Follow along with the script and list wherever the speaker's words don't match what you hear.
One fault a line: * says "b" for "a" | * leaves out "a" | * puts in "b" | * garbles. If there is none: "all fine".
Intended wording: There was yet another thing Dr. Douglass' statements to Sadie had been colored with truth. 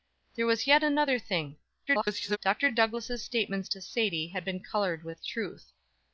* garbles